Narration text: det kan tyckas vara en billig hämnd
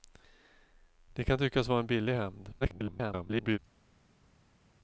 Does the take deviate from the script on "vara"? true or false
false